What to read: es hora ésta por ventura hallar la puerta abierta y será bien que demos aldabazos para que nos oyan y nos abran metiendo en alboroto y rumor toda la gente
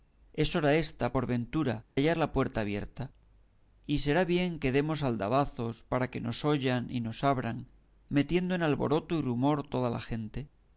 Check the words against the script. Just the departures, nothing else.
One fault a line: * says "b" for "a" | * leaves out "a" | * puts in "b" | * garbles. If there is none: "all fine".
all fine